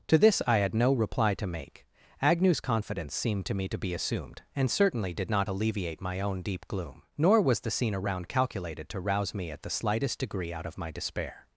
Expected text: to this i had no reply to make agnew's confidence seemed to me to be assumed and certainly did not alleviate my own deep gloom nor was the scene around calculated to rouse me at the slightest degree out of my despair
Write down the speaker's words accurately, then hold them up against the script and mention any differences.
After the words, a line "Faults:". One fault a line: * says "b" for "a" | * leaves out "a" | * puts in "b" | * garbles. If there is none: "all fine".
to this i had no reply to make agnew's confidence seemed to me to be assumed and certainly did not alleviate my own deep gloom nor was the scene around calculated to rouse me at the slightest degree out of my despair
Faults:
all fine